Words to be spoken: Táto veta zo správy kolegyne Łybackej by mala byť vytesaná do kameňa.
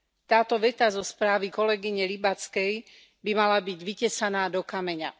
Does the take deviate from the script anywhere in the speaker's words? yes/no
no